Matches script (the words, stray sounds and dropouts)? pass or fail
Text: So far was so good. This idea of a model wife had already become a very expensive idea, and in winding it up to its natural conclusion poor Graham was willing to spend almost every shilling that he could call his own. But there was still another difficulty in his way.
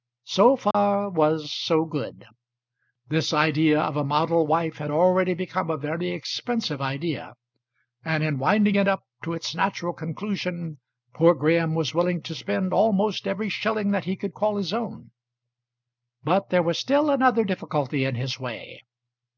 fail